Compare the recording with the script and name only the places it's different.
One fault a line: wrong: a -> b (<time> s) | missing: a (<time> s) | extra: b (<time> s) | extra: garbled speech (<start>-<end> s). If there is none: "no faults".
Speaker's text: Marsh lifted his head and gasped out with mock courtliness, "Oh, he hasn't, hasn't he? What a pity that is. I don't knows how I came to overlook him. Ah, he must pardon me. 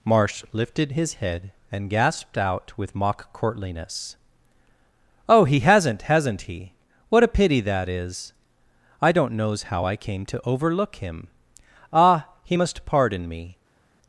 no faults